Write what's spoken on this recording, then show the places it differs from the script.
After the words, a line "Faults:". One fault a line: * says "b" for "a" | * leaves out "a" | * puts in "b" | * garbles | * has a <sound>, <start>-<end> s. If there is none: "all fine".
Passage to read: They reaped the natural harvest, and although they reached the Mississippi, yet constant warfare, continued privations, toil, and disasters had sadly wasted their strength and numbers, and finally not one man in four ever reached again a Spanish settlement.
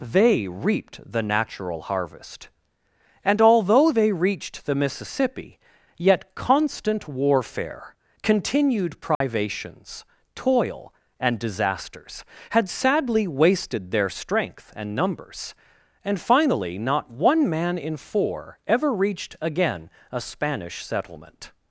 They reaped the natural harvest, and although they reached the Mississippi, yet constant warfare, continued privations, toil, and disasters had sadly wasted their strength and numbers, and finally not one man in four ever reached again a Spanish settlement.
Faults:
* has a dropout, 9.1-9.2 s